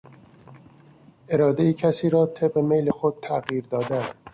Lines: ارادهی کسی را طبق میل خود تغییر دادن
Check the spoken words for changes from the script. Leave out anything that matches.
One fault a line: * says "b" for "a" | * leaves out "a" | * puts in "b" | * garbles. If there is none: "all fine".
all fine